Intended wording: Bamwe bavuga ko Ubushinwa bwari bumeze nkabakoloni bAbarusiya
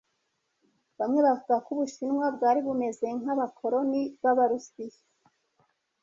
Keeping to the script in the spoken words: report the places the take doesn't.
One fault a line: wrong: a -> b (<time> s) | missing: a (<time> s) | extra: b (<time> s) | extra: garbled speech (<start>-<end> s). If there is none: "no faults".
no faults